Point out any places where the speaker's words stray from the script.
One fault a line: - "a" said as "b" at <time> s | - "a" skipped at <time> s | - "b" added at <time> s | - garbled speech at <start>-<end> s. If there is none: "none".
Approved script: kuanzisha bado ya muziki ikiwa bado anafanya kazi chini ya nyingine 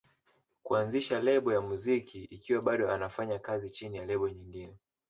- "bado" said as "lebo" at 1.2 s
- "lebo" added at 4.0 s